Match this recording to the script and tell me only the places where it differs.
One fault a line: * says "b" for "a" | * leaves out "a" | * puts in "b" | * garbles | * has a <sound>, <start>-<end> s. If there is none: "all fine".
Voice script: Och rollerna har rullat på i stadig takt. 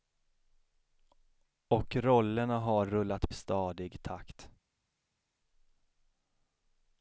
* leaves out "på"